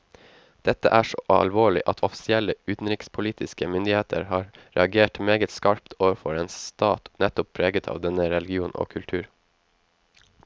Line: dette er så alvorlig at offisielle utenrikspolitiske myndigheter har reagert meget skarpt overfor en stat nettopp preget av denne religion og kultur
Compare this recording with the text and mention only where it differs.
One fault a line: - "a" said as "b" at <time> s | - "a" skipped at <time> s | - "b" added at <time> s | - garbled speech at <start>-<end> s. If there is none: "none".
none